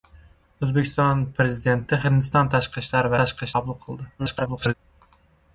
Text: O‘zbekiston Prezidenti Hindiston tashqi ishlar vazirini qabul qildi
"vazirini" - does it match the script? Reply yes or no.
no